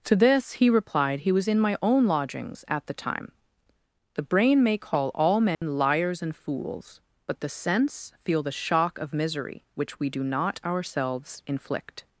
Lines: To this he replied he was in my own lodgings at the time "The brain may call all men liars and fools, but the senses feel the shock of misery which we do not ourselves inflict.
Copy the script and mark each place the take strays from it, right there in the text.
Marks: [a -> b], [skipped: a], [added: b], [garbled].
To this he replied he was in my own lodgings at the time "The brain may call all men liars and fools, but the [senses -> sense] feel the shock of misery which we do not ourselves inflict.